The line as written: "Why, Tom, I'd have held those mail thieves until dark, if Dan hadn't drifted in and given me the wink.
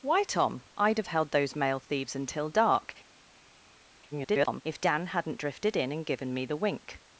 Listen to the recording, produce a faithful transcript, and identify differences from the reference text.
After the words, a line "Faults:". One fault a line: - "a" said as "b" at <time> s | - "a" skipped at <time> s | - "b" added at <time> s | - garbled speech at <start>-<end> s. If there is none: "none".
"Why, Tom, I'd have held those mail thieves until dark, [garbled] if Dan hadn't drifted in and given me the wink.
Faults:
- garbled speech at 4.1-4.6 s